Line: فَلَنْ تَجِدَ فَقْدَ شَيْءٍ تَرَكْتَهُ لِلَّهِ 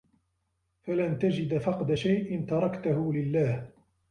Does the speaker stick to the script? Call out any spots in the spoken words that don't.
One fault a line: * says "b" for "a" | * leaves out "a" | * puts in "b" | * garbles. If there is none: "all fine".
all fine